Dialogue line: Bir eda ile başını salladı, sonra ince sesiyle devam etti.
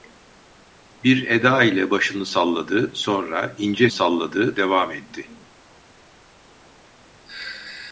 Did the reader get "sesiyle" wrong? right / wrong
wrong